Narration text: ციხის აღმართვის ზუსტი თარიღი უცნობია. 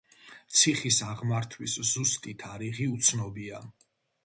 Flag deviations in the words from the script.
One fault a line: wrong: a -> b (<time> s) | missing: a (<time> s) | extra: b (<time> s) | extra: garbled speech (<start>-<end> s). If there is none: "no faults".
no faults